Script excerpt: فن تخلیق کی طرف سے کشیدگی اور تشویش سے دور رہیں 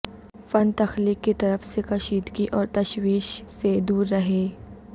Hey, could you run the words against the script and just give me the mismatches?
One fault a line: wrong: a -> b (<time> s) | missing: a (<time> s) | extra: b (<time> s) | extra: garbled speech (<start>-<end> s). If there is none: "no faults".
no faults